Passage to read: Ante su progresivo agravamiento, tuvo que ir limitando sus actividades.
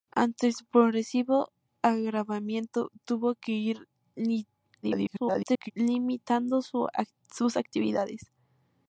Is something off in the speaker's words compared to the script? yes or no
yes